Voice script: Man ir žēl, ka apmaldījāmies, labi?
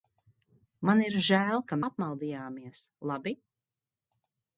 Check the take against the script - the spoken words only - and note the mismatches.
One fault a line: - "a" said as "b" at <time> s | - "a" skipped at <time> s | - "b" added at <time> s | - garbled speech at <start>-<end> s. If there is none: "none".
none